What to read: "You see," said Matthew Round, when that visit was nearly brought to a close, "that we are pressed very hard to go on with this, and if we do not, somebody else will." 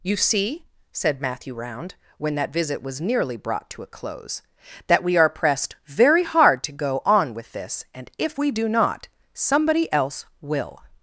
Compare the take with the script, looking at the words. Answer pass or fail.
pass